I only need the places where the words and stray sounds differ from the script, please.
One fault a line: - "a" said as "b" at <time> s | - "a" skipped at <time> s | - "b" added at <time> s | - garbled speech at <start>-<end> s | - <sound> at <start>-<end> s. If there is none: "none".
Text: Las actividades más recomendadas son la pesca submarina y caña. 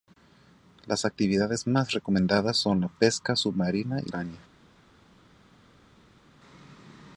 none